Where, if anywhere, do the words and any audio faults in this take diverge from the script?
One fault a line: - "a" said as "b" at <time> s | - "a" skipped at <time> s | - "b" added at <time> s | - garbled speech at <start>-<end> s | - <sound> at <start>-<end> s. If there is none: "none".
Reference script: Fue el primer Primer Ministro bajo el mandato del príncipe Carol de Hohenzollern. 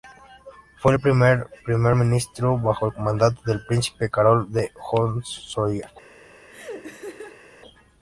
- laugh at 6.5-7.5 s